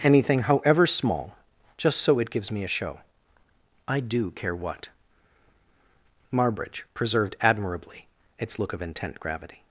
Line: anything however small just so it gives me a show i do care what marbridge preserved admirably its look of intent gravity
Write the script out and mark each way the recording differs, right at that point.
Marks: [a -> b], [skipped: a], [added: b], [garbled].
anything however small just so it gives me a show i do care what marbridge preserved admirably its look of intent gravity